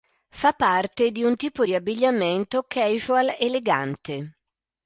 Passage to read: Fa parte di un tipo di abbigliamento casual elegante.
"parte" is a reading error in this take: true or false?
false